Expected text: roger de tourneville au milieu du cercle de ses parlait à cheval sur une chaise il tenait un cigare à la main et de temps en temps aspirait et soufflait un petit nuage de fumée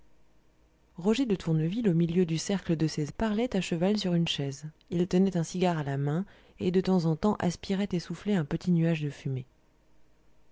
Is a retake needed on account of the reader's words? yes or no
no